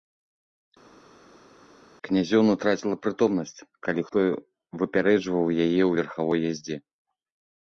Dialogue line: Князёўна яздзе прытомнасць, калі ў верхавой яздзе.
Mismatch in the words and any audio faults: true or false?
true